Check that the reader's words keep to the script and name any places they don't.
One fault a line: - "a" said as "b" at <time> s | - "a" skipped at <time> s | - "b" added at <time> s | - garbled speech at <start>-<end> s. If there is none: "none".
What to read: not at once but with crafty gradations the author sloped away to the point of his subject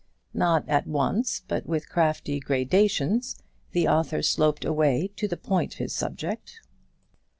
- "of" skipped at 5.8 s